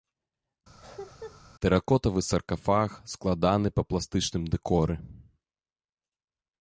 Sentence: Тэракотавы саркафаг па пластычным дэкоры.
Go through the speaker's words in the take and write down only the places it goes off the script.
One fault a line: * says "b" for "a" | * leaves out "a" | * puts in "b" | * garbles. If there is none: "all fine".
* puts in "складаны"